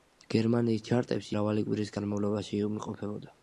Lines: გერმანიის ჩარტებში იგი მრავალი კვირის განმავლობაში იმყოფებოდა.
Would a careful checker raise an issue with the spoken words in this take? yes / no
yes